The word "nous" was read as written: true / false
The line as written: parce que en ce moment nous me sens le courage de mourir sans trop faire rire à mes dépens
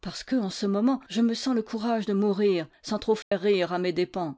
false